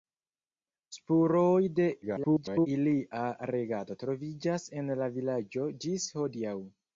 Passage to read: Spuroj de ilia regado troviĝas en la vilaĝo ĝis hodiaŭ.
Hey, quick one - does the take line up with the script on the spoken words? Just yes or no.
no